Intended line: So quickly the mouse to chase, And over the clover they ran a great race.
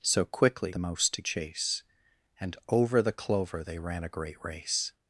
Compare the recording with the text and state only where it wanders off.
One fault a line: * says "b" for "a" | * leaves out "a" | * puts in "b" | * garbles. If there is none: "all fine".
all fine